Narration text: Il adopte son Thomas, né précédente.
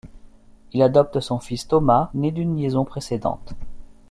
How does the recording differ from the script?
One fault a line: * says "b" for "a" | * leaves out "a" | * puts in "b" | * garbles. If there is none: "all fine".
* puts in "fils"
* puts in "d'une liaison"